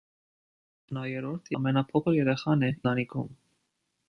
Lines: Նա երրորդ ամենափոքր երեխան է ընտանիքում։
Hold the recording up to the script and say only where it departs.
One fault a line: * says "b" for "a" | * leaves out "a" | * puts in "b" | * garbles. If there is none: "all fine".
all fine